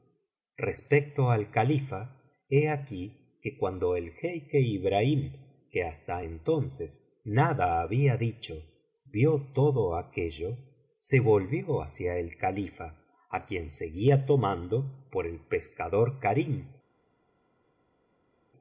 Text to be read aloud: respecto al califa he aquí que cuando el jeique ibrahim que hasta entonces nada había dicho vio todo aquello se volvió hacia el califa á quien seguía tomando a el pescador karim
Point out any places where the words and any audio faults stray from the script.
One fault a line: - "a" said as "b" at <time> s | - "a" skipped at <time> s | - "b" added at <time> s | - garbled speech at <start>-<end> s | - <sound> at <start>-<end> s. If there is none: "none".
- "a" said as "por" at 15.1 s